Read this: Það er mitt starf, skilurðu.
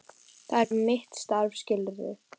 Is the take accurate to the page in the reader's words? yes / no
yes